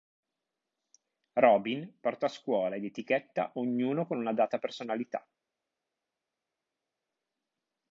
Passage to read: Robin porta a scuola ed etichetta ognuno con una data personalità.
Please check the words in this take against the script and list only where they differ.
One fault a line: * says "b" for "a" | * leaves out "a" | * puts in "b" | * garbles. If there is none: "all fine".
all fine